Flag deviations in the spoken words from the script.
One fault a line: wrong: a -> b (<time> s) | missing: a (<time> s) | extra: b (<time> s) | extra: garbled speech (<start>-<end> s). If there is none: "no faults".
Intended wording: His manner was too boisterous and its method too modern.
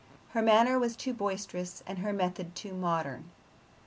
wrong: His -> Her (0.3 s)
wrong: its -> her (2.0 s)